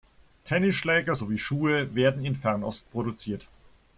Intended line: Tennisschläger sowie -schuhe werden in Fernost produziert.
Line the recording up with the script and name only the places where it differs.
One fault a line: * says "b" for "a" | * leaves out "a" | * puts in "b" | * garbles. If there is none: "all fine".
all fine